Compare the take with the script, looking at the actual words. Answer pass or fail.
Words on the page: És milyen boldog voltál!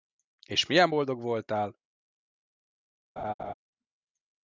pass